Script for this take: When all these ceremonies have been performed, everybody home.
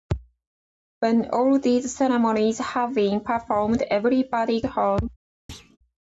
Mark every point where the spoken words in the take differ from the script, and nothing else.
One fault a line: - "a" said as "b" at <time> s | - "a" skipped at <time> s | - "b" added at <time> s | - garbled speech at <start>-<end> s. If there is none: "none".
none